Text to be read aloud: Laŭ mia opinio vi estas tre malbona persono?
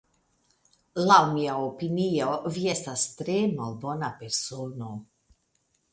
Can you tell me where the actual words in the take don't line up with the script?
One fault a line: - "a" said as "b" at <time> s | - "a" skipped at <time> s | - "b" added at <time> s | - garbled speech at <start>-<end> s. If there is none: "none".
none